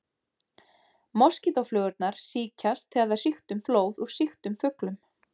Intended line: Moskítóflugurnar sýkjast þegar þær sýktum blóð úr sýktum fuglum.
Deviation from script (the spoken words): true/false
false